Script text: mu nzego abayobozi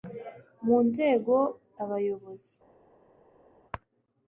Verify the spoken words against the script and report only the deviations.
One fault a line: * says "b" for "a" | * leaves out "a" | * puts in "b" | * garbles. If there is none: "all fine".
all fine